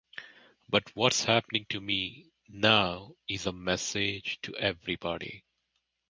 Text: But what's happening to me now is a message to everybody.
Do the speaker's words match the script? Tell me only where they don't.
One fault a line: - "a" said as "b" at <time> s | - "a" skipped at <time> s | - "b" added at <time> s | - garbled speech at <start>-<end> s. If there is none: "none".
none